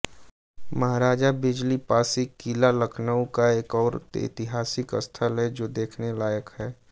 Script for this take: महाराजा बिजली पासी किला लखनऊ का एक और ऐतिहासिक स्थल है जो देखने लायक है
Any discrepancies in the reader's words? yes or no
no